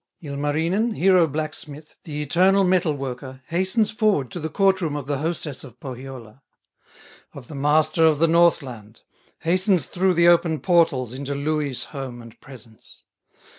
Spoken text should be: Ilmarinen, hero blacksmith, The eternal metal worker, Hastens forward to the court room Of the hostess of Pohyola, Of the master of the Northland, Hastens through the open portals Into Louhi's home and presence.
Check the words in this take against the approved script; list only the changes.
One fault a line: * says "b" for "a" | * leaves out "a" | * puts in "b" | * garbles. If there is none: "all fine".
all fine